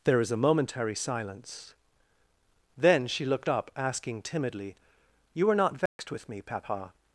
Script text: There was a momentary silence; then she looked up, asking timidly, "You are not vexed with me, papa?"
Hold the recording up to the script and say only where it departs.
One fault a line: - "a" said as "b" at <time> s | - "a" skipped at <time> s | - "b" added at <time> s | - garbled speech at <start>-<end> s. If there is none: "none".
- "was" said as "is" at 0.2 s